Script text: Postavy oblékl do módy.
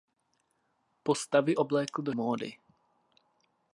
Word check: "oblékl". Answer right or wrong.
right